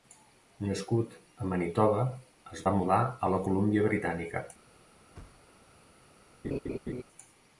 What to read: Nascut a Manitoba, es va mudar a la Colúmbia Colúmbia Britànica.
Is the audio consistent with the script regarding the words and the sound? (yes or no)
no